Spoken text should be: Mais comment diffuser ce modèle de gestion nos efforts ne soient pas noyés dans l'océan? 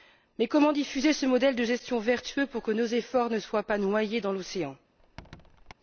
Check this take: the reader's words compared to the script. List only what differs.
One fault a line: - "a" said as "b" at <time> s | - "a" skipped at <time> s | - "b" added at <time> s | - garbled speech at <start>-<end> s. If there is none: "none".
- "vertueux pour que" added at 2.0 s